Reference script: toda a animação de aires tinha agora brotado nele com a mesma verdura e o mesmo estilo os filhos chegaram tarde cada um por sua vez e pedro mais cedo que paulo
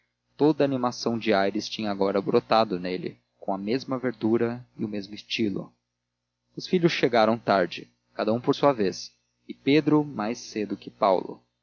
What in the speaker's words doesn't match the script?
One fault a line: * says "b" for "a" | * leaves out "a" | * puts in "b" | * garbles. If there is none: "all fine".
all fine